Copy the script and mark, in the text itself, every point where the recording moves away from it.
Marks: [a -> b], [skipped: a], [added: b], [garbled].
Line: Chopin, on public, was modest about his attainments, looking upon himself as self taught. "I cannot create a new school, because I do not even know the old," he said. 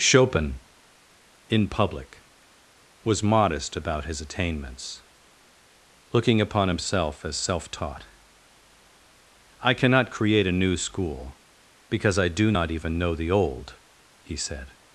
Chopin, [on -> in] public, was modest about his attainments, looking upon himself as self taught. "I cannot create a new school, because I do not even know the old," he said.